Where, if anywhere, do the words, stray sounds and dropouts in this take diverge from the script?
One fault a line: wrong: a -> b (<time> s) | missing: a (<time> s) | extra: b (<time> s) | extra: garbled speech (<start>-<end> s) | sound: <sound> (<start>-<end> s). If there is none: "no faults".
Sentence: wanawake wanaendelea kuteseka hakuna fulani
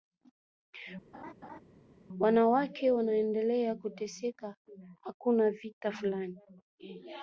sound: laugh (1.1-1.6 s)
extra: vita (5.5 s)